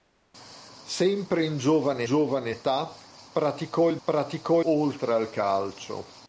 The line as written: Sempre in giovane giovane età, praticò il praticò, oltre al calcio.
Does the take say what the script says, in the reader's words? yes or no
yes